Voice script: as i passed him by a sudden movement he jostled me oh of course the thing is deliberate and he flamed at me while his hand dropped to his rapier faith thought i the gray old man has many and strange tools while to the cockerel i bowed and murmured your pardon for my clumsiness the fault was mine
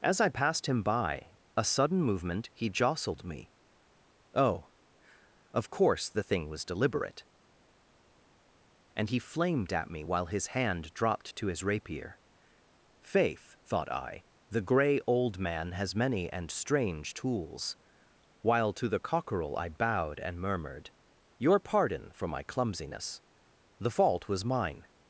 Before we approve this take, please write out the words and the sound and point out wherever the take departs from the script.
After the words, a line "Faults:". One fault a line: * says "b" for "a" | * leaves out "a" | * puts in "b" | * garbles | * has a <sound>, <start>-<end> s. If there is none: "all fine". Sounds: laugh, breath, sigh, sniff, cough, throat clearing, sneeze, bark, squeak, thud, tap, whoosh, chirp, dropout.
as i passed him by a sudden movement he jostled me oh of course the thing was deliberate and he flamed at me while his hand dropped to his rapier faith thought i the gray old man has many and strange tools while to the cockerel i bowed and murmured your pardon for my clumsiness the fault was mine
Faults:
* says "was" for "is"